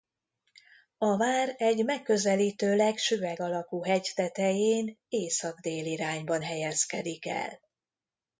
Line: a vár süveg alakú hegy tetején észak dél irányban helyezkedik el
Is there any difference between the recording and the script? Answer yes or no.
yes